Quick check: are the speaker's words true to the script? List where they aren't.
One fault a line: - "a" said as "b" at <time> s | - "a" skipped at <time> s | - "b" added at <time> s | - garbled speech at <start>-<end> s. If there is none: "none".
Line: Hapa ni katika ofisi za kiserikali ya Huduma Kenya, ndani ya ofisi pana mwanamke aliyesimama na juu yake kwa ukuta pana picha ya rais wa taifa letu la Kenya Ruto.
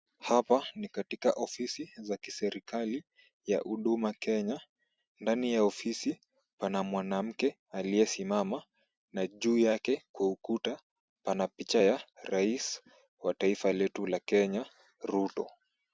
none